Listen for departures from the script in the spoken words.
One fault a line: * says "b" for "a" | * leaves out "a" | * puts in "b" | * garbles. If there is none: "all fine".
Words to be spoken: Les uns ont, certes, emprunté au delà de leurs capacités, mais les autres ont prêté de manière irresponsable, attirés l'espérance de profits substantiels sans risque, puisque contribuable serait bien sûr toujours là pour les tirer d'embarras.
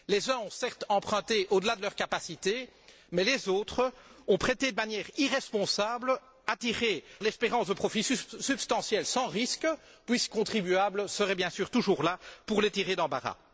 all fine